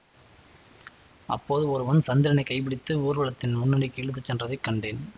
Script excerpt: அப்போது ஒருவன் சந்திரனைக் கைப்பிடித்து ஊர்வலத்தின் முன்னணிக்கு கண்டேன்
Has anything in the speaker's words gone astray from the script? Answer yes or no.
yes